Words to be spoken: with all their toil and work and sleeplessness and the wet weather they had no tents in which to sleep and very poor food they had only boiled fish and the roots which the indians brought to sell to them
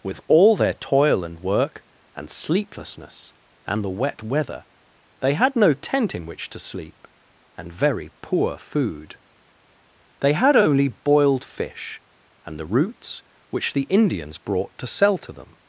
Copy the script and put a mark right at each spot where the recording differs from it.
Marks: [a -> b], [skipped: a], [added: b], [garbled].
with all their toil and work and sleeplessness and the wet weather they had no [tents -> tent] in which to sleep and very poor food they had only boiled fish and the roots which the indians brought to sell to them